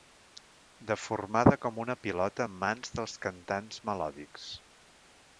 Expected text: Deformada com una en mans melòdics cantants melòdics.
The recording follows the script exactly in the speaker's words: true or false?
false